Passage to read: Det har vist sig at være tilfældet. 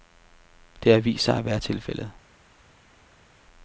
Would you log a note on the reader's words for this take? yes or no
no